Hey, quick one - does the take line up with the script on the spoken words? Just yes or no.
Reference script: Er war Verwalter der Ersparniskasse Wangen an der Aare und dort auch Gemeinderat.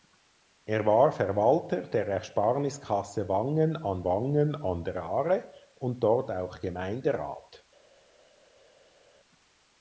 no